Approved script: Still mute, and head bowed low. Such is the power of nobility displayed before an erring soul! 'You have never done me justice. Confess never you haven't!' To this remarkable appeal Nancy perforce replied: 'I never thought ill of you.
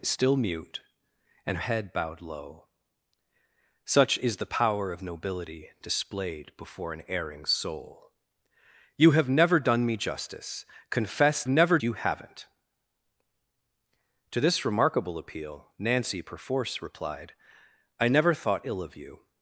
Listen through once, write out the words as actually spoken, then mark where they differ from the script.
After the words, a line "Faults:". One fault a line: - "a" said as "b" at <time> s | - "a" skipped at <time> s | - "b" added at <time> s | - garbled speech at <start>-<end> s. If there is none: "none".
Still mute, and head bowed low. Such is the power of nobility displayed before an erring soul! 'You have never done me justice. Confess never you haven't!' To this remarkable appeal Nancy perforce replied: 'I never thought ill of you.
Faults:
none